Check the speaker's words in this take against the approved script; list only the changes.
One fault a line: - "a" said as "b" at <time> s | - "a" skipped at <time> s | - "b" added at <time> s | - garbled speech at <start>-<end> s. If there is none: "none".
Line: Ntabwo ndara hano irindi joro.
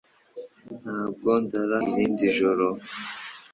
- "hano" skipped at 1.8 s